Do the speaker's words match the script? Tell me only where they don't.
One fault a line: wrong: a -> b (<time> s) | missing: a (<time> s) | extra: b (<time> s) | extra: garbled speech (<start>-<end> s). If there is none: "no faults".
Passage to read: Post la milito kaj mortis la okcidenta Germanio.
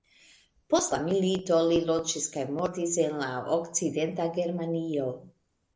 extra: li loĝis (1.7 s)
extra: en (3.1 s)